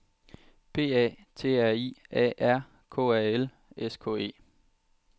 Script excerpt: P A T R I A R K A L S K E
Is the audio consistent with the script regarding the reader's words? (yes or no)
yes